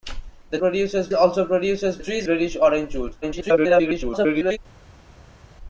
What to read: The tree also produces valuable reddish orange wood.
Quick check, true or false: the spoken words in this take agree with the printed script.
false